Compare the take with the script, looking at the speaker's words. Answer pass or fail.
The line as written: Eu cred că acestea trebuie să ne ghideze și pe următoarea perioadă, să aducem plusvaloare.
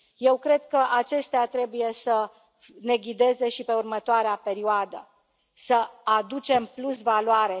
pass